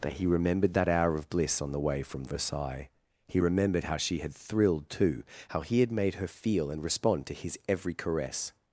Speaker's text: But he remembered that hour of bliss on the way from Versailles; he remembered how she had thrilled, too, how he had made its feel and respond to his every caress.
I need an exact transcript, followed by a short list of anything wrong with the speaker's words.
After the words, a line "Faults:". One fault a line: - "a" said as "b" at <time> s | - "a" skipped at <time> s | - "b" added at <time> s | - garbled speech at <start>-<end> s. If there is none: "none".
But he remembered that hour of bliss on the way from Versailles; he remembered how she had thrilled, too, how he had made her feel and respond to his every caress.
Faults:
- "its" said as "her" at 6.1 s